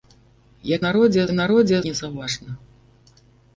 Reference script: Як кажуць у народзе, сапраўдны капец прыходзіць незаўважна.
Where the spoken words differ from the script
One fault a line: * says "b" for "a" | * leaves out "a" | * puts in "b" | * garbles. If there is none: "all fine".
* says "народзе" for "кажуць"
* leaves out "сапраўдны капец прыходзіць"